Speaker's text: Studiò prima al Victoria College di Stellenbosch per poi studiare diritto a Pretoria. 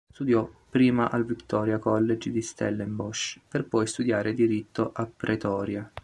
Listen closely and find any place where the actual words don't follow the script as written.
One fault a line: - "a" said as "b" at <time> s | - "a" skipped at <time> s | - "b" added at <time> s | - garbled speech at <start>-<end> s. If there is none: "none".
none